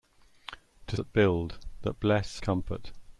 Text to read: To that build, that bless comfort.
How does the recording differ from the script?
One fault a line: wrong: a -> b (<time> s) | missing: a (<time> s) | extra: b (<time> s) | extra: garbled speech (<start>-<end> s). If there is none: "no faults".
no faults